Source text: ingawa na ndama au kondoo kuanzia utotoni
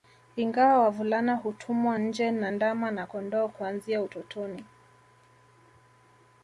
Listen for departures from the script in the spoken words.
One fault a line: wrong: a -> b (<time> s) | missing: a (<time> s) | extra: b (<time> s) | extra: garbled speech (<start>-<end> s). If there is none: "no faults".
extra: wavulana hutumwa nje (0.8 s)
wrong: au -> na (2.9 s)